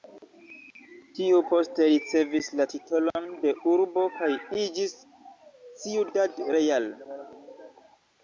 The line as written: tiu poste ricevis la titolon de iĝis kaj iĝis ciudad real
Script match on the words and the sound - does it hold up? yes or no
no